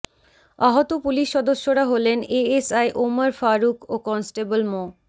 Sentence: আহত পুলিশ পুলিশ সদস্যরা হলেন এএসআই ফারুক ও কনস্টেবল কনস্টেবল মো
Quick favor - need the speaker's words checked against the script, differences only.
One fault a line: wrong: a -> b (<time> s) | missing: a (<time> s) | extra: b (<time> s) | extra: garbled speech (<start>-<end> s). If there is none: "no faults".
missing: পুলিশ (1.3 s)
extra: ওমর (3.0 s)
missing: কনস্টেবল (4.6 s)